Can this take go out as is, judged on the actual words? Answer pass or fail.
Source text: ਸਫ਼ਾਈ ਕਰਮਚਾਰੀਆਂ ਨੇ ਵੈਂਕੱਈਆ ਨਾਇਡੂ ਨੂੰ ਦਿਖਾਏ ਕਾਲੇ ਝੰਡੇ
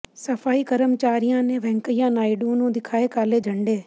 pass